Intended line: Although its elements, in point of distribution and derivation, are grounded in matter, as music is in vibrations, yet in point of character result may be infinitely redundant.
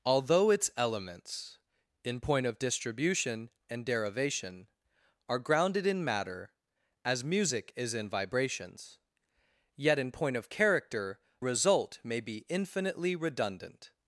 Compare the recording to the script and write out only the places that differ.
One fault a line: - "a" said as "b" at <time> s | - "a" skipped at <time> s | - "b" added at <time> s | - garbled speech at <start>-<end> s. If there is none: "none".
none